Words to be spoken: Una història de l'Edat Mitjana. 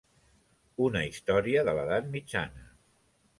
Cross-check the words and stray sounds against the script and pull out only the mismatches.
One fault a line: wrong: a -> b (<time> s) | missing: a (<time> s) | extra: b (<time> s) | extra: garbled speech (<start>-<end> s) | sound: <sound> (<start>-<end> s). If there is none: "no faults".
no faults